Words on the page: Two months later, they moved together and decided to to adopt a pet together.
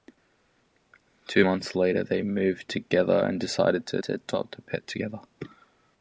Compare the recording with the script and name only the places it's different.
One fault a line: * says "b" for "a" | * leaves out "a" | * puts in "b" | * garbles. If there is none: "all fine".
all fine